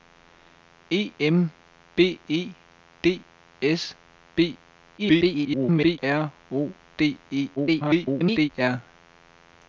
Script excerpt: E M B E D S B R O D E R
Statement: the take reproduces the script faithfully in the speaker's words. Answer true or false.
false